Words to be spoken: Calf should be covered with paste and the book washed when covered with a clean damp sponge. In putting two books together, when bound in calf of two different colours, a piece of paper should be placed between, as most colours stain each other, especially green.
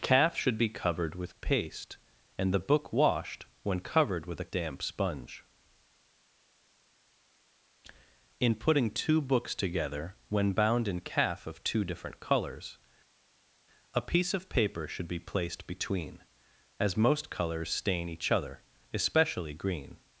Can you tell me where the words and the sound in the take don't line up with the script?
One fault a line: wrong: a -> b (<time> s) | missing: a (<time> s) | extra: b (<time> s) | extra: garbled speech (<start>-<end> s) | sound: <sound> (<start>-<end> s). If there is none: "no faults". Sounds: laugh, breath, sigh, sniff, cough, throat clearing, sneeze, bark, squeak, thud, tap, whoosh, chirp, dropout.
missing: clean (4.5 s)